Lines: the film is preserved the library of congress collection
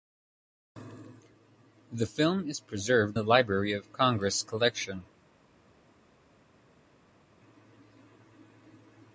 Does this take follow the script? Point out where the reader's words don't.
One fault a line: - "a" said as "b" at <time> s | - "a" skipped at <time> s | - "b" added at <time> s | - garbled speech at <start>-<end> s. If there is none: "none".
none